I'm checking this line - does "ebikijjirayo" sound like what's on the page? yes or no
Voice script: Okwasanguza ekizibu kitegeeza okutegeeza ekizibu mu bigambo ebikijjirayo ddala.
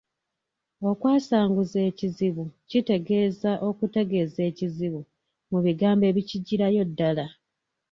yes